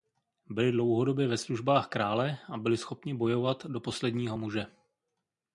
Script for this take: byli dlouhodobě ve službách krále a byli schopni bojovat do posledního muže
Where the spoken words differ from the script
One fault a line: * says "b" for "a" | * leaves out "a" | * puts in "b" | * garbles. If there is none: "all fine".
all fine